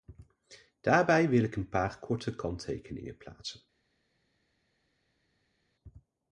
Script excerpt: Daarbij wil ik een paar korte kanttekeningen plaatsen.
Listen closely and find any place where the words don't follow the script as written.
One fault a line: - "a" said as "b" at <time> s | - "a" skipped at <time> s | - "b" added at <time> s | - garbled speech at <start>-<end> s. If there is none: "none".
none